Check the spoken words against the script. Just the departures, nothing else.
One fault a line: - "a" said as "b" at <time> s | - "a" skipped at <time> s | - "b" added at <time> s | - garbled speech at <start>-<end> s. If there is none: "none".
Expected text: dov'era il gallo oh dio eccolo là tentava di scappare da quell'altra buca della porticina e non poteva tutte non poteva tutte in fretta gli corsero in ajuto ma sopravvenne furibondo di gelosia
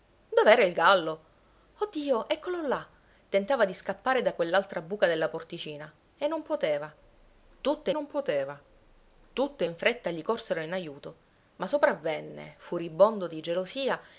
none